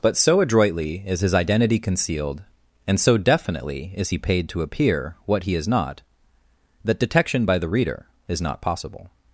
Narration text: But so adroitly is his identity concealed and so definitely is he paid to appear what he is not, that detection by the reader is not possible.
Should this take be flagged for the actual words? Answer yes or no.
no